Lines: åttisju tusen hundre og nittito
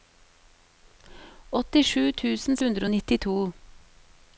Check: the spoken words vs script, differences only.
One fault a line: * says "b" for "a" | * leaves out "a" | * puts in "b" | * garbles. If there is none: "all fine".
all fine